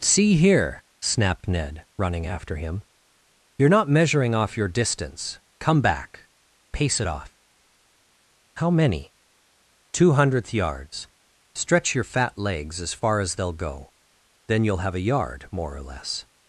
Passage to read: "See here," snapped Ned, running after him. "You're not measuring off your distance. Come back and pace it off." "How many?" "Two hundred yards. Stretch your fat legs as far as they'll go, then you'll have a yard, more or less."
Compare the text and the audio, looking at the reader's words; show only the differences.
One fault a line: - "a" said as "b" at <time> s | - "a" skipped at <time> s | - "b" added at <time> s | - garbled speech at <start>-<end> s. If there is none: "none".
- "and" skipped at 6.3 s
- "hundred" said as "hundredth" at 10.1 s